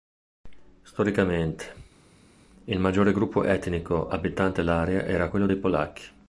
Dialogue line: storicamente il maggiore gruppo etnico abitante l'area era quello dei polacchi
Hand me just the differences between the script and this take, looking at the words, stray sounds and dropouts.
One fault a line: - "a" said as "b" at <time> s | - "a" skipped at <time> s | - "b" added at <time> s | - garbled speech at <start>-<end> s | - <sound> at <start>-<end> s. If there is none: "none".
none